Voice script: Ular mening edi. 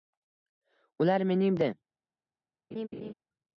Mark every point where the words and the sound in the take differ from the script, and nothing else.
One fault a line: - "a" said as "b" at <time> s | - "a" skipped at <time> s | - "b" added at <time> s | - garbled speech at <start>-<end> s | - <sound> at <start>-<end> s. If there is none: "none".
- laugh at 2.7-3.1 s